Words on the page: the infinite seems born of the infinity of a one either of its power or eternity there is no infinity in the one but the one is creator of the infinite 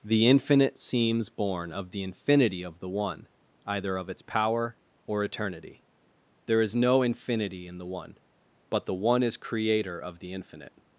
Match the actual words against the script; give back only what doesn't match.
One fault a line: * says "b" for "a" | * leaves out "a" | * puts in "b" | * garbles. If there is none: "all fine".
* says "the" for "a"